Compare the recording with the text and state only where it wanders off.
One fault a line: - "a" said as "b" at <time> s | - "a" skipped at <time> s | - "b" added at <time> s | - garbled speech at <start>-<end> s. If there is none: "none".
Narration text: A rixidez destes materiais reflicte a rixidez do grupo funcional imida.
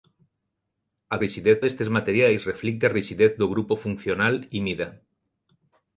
none